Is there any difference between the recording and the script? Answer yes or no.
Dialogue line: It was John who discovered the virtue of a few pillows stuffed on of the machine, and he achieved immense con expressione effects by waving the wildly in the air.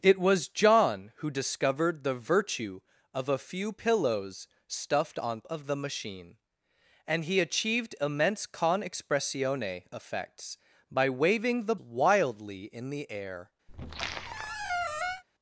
no